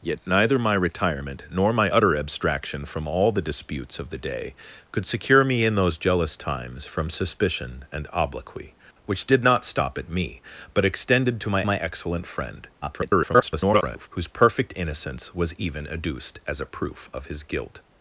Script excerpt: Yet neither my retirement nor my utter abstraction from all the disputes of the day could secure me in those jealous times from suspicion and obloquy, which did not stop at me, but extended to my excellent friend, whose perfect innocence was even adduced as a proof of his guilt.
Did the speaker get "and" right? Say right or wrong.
right